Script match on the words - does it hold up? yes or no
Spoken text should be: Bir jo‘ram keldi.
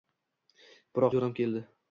yes